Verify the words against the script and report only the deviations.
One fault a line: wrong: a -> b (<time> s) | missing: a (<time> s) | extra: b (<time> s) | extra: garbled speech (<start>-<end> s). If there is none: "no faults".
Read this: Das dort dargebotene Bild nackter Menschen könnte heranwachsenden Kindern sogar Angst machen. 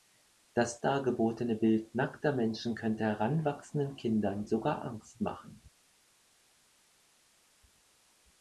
missing: dort (0.8 s)